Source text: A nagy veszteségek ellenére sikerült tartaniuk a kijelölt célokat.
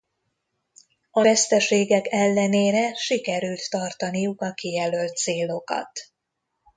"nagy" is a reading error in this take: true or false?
true